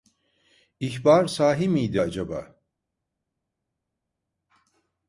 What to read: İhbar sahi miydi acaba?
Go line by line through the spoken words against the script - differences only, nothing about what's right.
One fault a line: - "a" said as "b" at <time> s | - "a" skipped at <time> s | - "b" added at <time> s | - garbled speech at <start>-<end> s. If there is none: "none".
none